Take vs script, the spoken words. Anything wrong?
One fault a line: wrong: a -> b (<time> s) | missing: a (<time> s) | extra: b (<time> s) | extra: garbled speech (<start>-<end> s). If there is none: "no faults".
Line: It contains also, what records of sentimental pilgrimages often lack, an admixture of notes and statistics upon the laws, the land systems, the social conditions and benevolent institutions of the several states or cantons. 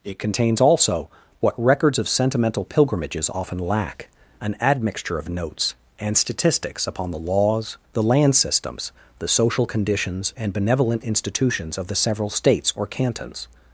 no faults